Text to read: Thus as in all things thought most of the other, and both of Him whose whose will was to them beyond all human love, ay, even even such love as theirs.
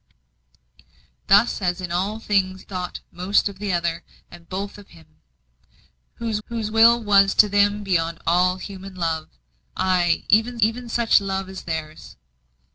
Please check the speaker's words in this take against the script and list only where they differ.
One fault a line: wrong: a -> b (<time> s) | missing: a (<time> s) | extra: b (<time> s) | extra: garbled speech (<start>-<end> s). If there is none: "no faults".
no faults